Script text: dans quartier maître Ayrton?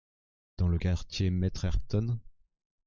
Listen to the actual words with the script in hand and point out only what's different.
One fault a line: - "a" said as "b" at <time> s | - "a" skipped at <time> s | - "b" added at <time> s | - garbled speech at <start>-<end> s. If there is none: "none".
- "le" added at 0.7 s